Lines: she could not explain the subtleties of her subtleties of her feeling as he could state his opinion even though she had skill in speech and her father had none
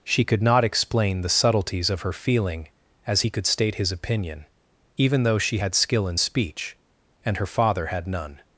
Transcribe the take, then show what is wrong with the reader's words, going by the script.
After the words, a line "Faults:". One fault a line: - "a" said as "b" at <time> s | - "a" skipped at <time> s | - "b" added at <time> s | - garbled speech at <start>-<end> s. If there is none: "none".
she could not explain the subtleties of her feeling as he could state his opinion even though she had skill in speech and her father had none
Faults:
- "subtleties of her" skipped at 2.1 s